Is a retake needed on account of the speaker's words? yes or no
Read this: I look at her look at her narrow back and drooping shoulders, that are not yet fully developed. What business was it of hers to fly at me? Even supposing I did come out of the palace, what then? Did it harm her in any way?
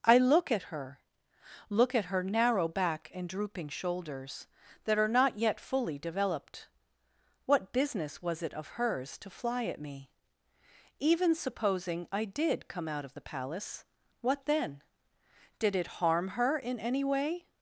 no